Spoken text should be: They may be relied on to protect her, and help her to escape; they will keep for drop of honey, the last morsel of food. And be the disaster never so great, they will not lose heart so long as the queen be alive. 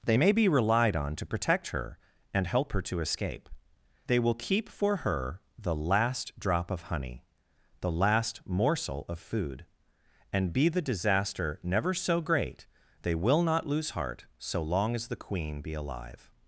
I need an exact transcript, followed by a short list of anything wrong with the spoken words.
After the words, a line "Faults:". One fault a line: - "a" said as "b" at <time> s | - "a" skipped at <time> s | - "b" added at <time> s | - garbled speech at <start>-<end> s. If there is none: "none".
They may be relied on to protect her, and help her to escape; they will keep for her the last drop of honey, the last morsel of food. And be the disaster never so great, they will not lose heart so long as the queen be alive.
Faults:
- "her the last" added at 5.0 s